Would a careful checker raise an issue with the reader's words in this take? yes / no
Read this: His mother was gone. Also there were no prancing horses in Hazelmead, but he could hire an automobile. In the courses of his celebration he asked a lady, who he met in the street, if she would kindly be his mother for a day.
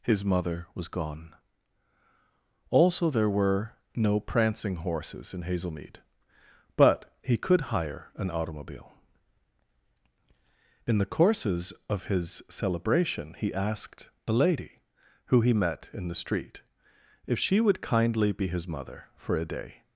no